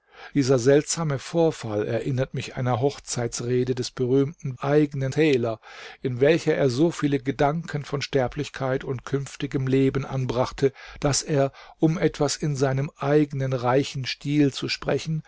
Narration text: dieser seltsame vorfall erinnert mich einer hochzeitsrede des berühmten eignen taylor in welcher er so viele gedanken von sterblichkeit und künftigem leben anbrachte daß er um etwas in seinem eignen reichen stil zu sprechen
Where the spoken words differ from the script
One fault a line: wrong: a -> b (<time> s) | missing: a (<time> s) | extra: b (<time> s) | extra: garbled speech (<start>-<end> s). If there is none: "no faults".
no faults